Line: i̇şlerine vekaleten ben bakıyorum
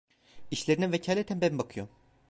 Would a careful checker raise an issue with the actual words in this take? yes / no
no